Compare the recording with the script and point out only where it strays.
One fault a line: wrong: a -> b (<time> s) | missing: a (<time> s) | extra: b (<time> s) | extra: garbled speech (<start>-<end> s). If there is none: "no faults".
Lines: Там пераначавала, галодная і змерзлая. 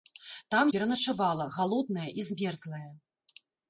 no faults